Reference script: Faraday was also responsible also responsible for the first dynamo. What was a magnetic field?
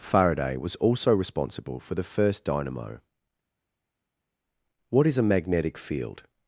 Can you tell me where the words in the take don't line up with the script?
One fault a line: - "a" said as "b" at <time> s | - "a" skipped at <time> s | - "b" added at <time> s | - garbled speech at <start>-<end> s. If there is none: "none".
- "also responsible" skipped at 1.8 s
- "was" said as "is" at 5.1 s